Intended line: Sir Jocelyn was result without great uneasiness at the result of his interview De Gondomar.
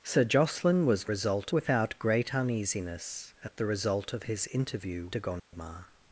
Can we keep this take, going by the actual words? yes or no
yes